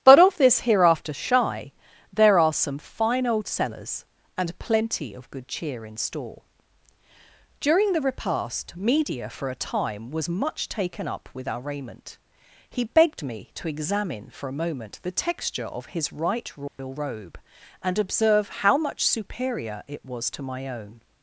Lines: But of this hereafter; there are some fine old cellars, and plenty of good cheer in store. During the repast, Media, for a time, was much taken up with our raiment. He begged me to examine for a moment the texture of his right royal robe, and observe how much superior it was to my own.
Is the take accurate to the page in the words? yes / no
no